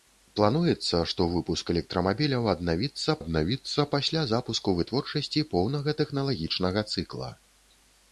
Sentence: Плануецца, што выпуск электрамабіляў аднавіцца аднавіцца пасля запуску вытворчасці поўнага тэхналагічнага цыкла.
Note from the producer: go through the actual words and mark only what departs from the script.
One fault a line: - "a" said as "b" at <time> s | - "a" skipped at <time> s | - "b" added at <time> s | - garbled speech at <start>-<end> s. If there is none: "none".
none